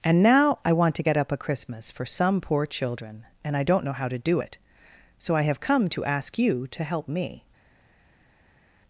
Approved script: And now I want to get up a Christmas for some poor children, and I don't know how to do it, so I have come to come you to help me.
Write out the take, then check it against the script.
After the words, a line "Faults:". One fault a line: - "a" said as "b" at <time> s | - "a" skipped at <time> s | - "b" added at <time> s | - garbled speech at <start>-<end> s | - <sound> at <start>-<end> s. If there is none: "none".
And now I want to get up a Christmas for some poor children, and I don't know how to do it, so I have come to ask you to help me.
Faults:
- "come" said as "ask" at 6.0 s